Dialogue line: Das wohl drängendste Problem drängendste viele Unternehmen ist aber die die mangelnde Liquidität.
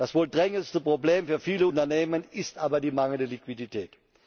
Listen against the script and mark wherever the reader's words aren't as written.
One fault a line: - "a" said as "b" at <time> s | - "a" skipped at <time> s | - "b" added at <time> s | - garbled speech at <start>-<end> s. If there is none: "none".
- "drängendste" said as "für" at 1.3 s
- "die" skipped at 2.9 s